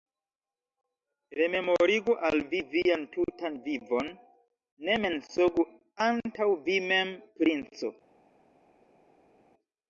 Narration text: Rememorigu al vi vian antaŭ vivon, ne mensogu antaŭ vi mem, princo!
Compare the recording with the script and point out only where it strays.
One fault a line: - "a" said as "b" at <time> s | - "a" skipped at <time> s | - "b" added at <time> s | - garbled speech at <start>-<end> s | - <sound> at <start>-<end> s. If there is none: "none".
- "antaŭ" said as "tutan" at 3.2 s